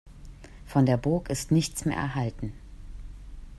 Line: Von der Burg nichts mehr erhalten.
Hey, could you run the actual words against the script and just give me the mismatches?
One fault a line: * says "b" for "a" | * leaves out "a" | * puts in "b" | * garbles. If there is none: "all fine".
* puts in "ist"